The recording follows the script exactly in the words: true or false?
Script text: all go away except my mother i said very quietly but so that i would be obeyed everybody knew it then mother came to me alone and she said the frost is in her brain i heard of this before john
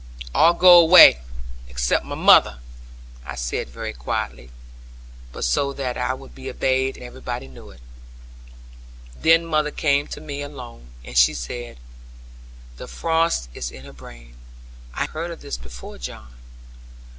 true